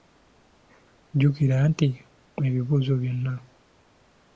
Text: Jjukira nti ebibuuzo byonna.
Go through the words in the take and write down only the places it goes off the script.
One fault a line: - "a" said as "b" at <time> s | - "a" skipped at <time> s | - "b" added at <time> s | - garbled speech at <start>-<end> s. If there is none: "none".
none